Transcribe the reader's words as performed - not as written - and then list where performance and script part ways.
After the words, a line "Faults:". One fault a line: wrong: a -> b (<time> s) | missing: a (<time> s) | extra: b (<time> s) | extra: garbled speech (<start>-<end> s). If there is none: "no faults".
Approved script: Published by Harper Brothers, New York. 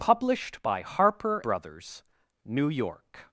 Published by Harper Brothers, New York.
Faults:
no faults